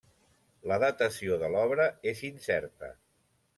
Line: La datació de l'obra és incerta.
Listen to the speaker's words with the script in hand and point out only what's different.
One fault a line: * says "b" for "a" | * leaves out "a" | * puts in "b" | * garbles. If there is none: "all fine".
all fine